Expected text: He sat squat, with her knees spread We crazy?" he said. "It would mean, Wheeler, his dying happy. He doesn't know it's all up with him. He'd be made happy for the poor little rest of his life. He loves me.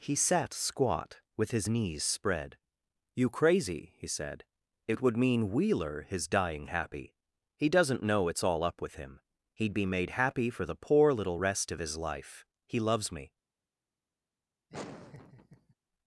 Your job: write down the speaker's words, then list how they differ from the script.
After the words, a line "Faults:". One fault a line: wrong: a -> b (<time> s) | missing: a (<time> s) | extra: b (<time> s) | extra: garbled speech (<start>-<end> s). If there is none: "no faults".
He sat squat, with his knees spread You crazy?" he said. "It would mean, Wheeler, his dying happy. He doesn't know it's all up with him. He'd be made happy for the poor little rest of his life. He loves me.
Faults:
wrong: her -> his (1.5 s)
wrong: We -> You (3.2 s)